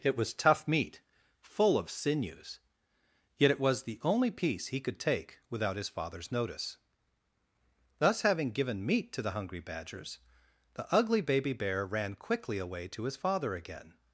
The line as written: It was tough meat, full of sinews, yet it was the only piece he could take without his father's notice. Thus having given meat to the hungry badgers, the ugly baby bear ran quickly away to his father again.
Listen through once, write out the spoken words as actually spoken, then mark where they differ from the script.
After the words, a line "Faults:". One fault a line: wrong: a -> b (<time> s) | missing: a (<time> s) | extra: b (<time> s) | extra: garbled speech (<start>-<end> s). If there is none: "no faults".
It was tough meat, full of sinews, yet it was the only piece he could take without his father's notice. Thus having given meat to the hungry badgers, the ugly baby bear ran quickly away to his father again.
Faults:
no faults